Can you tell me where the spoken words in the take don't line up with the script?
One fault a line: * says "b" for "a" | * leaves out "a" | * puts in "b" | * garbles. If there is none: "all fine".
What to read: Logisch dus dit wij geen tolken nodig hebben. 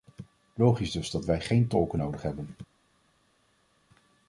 * says "dat" for "dit"